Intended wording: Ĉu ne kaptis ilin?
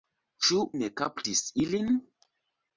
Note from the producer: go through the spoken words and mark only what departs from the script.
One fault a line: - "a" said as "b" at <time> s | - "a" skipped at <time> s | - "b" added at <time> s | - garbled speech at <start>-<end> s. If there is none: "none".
none